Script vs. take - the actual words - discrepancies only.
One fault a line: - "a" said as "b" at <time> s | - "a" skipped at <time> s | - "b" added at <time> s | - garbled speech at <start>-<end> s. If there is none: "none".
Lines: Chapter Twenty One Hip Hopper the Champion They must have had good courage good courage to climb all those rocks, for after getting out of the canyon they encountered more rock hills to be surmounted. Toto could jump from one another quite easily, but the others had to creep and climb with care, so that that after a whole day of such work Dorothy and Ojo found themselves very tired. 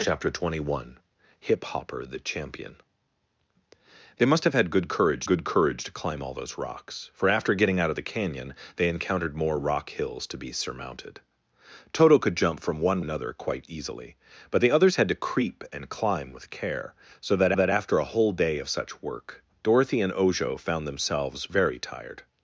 none